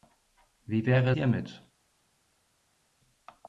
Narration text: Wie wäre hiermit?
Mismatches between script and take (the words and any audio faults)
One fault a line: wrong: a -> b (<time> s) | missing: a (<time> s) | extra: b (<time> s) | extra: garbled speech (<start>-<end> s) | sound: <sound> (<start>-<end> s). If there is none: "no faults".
no faults